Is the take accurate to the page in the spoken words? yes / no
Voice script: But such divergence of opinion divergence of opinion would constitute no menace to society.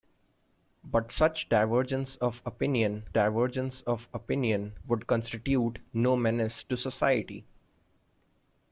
yes